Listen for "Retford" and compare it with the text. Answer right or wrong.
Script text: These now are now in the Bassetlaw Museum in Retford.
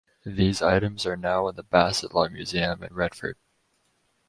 right